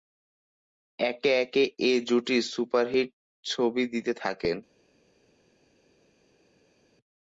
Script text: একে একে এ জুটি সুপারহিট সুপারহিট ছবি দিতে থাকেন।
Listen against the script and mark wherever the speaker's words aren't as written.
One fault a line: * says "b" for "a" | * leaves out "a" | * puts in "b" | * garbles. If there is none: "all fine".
* leaves out "সুপারহিট"